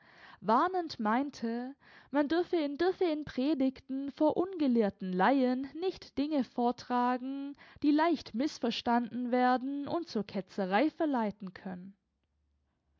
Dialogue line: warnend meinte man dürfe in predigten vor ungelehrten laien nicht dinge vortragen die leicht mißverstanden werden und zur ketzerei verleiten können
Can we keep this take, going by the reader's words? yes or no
no